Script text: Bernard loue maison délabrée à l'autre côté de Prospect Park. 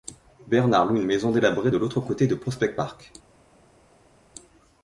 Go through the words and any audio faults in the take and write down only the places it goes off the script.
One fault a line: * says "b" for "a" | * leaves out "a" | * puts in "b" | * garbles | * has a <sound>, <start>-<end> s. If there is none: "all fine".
* puts in "une"
* says "de" for "à"